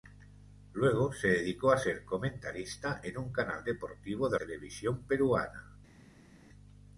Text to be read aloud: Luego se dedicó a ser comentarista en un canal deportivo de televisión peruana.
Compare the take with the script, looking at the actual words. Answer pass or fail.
pass